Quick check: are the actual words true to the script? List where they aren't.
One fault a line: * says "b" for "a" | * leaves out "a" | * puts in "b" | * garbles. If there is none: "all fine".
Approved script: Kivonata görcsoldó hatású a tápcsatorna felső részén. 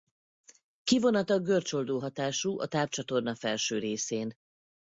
all fine